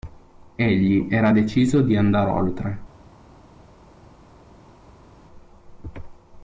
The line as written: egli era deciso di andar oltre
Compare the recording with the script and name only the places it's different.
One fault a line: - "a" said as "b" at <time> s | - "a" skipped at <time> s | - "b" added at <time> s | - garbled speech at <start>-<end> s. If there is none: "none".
none